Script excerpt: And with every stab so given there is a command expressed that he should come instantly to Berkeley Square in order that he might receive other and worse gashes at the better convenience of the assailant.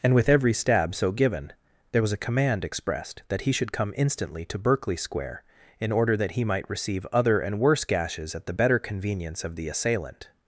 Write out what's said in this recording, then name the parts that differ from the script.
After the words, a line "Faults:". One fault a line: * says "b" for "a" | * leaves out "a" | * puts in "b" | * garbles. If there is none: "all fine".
And with every stab so given there was a command expressed that he should come instantly to Berkeley Square in order that he might receive other and worse gashes at the better convenience of the assailant.
Faults:
* says "was" for "is"